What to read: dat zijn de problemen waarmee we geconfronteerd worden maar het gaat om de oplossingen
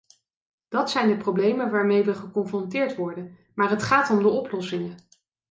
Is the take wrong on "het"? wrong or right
right